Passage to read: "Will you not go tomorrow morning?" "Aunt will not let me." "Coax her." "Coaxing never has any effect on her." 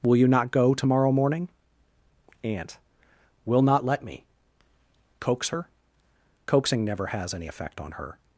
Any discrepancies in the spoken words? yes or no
no